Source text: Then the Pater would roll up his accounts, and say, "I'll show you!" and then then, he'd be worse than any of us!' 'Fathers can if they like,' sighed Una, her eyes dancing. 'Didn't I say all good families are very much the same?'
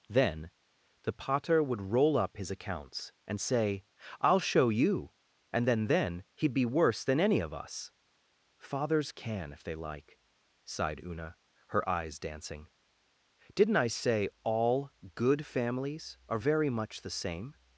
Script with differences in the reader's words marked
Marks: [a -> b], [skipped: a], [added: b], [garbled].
Then the Pater would roll up his accounts, and say, "I'll show you!" and then then, he'd be worse than any of us!' 'Fathers can if they like,' sighed Una, her eyes dancing. 'Didn't I say all good families are very much the same?'